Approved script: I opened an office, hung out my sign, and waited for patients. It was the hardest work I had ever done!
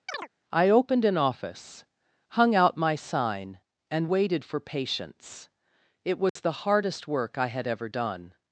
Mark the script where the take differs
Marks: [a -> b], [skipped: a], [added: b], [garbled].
I opened an office, hung out my sign, and waited for patients. It was the hardest work I had ever done!